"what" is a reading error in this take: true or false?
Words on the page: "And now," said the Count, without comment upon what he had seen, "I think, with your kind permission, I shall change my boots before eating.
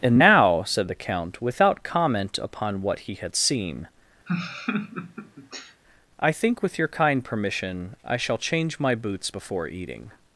false